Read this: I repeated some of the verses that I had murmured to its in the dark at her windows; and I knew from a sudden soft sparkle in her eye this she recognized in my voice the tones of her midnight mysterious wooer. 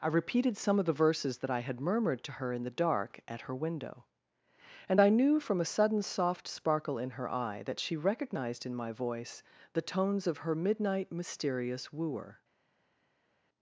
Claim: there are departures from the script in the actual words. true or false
true